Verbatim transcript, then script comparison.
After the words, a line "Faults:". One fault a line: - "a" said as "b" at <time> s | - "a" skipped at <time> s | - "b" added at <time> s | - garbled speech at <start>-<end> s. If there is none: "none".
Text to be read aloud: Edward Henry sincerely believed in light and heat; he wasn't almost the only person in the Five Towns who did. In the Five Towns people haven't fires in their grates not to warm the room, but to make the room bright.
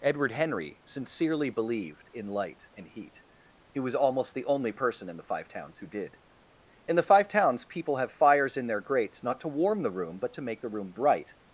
Edward Henry sincerely believed in light and heat; he was almost the only person in the Five Towns who did. In the Five Towns people have fires in their grates not to warm the room, but to make the room bright.
Faults:
- "wasn't" said as "was" at 3.8 s
- "haven't" said as "have" at 8.0 s